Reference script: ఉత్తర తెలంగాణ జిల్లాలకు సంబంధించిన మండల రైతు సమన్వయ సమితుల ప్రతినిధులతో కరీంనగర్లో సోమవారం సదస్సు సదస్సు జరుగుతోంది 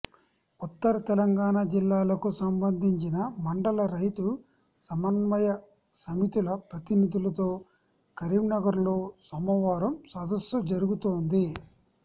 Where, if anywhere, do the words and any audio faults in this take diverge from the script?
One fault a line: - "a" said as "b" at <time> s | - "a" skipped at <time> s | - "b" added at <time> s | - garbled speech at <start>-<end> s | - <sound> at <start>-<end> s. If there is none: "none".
- "సదస్సు" skipped at 10.6 s